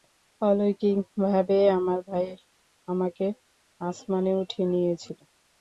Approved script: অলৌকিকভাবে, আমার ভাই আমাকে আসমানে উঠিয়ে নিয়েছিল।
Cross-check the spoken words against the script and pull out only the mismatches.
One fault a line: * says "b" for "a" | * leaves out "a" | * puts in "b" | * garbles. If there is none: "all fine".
all fine